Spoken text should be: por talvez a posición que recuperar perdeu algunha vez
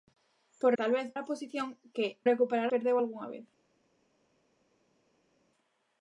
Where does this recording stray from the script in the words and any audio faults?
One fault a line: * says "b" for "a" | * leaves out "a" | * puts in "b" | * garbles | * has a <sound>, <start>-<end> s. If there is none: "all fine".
all fine